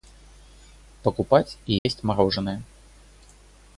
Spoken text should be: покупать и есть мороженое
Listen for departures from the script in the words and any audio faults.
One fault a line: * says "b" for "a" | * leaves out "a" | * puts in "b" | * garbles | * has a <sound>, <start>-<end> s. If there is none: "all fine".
* has a dropout, 1.8-1.9 s